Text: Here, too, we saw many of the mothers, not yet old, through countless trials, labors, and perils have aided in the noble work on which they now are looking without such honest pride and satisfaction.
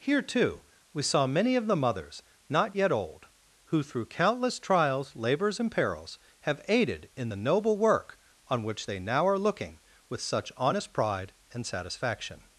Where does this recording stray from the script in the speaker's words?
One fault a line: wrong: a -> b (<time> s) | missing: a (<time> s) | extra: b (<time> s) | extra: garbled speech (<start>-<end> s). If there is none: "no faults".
extra: who (3.6 s)
wrong: without -> with (10.1 s)